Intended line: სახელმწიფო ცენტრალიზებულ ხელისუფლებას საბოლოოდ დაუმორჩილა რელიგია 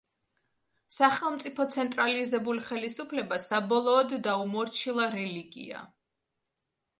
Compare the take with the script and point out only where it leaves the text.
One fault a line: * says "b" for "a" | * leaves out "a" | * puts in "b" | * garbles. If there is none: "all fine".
all fine